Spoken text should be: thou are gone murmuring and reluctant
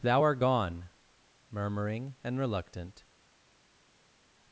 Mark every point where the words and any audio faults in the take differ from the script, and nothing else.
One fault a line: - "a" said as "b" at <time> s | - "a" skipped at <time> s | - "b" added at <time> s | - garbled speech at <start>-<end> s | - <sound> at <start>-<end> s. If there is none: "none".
- "are" said as "art" at 0.2 s